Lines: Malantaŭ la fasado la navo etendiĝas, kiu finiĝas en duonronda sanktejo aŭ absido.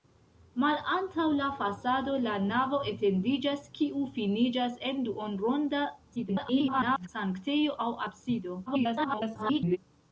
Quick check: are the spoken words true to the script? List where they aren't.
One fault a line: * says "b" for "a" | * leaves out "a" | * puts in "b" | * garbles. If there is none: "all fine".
* garbles
* garbles